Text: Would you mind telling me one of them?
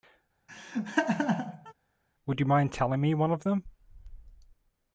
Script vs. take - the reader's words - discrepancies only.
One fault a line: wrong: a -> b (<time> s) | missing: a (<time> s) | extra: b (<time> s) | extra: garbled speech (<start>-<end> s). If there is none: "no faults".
no faults